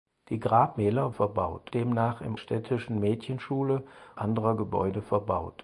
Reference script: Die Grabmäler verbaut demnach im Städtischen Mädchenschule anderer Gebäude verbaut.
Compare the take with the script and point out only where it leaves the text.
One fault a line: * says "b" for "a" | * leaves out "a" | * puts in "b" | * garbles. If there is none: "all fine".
all fine